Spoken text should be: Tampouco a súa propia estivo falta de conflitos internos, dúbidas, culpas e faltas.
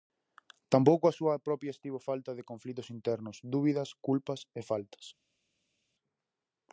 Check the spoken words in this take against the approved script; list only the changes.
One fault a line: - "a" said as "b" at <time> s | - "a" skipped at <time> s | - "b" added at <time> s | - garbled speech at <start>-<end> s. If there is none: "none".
none